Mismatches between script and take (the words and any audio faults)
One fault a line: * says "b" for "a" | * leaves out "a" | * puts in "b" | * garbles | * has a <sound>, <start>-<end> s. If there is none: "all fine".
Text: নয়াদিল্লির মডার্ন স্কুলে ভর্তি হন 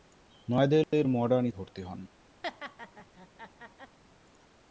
* has a dropout, 0.8-0.9 s
* leaves out "স্কুলে"
* has a laugh, 2.4-4.0 s